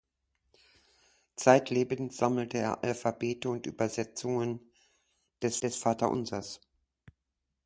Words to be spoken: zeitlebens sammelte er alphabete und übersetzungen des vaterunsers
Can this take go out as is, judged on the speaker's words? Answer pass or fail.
fail